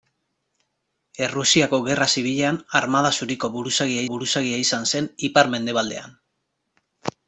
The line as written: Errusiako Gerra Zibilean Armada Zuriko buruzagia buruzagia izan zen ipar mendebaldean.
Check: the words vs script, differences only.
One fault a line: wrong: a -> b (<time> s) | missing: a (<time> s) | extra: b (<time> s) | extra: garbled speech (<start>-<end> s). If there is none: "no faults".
no faults